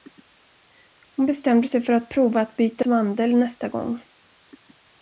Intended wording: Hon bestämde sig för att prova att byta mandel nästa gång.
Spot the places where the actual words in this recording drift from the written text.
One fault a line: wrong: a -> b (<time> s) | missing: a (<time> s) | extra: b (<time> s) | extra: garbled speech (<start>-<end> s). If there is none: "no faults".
no faults